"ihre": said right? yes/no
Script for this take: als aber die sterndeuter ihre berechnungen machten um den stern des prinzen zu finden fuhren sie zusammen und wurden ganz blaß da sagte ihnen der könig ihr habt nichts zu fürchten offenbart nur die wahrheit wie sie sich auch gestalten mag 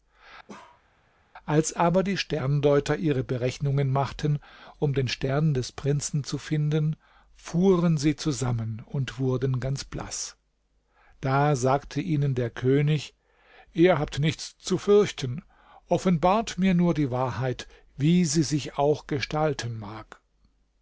yes